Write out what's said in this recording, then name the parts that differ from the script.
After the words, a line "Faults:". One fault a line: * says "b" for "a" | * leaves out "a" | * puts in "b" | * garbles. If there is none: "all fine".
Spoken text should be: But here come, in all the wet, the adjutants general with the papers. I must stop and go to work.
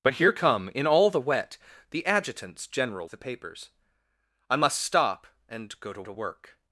But here come, in all the wet, the adjutants general the papers. I must stop and go to to work.
Faults:
* leaves out "with"
* puts in "to"